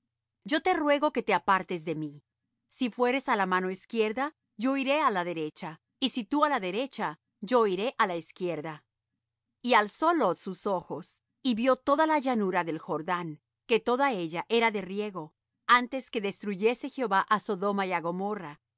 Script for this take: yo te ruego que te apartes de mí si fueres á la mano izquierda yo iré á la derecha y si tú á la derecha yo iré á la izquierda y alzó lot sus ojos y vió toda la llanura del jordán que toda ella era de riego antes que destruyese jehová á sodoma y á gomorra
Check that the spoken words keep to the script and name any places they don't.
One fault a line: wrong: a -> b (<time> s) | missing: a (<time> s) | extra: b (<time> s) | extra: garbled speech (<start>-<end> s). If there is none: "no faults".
no faults